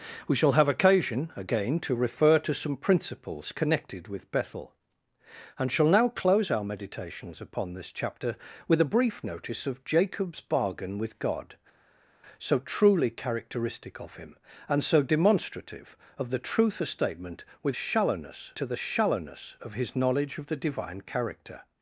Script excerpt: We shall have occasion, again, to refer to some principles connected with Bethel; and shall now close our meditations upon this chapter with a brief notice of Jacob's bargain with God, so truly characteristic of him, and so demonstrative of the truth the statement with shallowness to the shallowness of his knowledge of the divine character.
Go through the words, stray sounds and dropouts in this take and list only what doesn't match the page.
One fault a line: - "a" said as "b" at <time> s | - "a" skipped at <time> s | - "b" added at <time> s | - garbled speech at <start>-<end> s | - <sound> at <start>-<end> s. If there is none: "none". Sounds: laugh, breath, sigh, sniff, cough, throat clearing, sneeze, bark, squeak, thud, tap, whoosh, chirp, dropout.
none